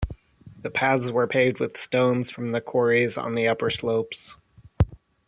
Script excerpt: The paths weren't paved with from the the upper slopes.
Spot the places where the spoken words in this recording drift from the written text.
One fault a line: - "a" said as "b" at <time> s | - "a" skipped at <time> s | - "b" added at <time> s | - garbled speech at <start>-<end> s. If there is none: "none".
- "weren't" said as "were" at 1.1 s
- "stones" added at 1.7 s
- "quarries on" added at 2.6 s